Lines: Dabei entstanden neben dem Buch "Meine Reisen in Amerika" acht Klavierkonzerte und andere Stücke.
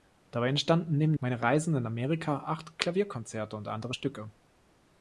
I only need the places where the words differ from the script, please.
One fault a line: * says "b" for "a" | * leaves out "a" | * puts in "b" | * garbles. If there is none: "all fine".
* leaves out "dem Buch"